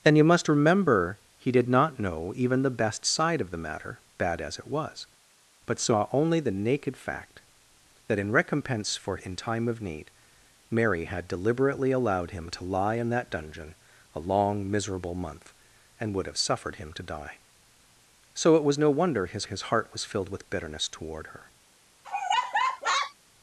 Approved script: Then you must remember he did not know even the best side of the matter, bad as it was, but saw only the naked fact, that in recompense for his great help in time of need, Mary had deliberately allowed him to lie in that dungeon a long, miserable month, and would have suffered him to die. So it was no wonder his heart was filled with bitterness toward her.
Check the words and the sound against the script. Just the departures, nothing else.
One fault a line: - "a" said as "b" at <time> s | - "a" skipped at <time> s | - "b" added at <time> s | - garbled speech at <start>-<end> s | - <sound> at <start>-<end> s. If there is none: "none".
- "his great help" skipped at 9.2 s
- "his" added at 19.4 s
- laugh at 22.0-23.1 s